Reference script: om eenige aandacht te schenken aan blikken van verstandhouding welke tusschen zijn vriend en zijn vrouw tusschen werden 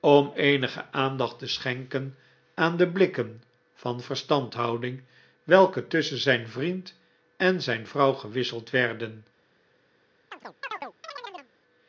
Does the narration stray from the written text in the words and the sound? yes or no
yes